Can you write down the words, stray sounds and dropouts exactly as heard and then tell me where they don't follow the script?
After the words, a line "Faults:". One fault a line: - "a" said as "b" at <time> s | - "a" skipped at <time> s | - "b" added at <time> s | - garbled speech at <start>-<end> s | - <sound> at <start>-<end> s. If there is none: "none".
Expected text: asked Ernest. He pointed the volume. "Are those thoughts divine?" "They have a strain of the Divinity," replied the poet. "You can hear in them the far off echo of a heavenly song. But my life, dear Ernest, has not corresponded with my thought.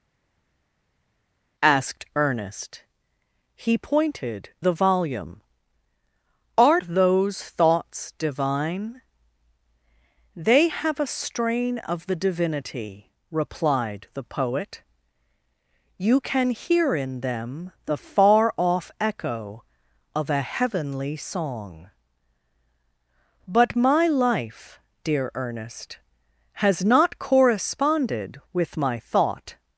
asked Ernest. He pointed the volume. "Are those thoughts divine?" "They have a strain of the Divinity," replied the poet. "You can hear in them the far off echo of a heavenly song. But my life, dear Ernest, has not corresponded with my thought.
Faults:
none